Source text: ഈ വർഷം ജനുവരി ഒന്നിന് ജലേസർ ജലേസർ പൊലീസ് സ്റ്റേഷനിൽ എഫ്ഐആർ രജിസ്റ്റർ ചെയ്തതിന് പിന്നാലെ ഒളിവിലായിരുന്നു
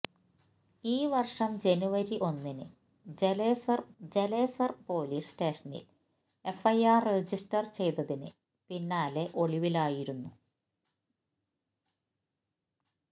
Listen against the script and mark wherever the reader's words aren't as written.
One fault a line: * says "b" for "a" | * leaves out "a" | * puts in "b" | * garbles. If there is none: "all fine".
all fine